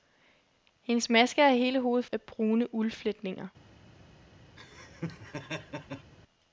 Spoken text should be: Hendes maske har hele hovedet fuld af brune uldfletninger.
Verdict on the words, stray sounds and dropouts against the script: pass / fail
fail